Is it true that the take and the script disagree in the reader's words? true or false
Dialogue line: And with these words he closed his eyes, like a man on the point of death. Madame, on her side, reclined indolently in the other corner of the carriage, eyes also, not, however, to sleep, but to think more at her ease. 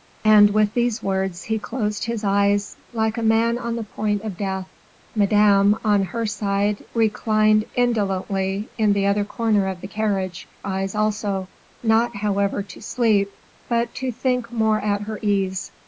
false